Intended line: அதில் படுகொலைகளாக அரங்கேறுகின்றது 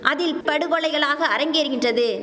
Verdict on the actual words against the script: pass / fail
pass